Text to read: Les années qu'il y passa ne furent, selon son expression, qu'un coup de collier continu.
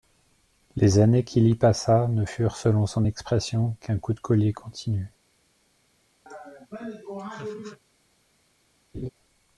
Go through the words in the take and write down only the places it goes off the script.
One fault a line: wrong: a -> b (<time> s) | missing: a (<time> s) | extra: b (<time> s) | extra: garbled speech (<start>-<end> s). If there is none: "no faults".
no faults